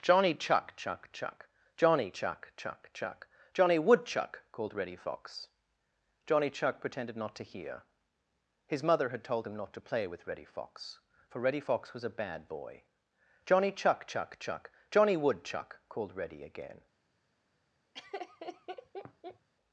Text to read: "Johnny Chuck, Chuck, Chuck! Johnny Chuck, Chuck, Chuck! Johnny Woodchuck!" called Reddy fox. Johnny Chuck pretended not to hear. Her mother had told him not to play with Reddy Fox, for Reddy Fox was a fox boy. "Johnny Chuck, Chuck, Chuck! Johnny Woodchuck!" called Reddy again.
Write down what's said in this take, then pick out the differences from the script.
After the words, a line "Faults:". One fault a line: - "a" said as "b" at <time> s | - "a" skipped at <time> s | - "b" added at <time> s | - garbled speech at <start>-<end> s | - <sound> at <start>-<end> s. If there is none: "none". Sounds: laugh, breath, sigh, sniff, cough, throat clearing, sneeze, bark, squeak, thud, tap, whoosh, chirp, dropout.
"Johnny Chuck, Chuck, Chuck! Johnny Chuck, Chuck, Chuck! Johnny Woodchuck!" called Reddy fox. Johnny Chuck pretended not to hear. His mother had told him not to play with Reddy Fox, for Reddy Fox was a bad boy. "Johnny Chuck, Chuck, Chuck! Johnny Woodchuck!" called Reddy again.
Faults:
- "Her" said as "His" at 8.7 s
- "fox" said as "bad" at 12.2 s
- laugh at 17.9-19.5 s